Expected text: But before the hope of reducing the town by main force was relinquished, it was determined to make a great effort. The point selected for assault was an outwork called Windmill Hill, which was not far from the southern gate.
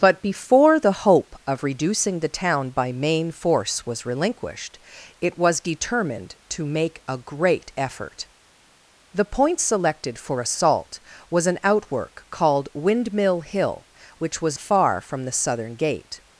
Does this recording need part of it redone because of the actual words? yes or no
yes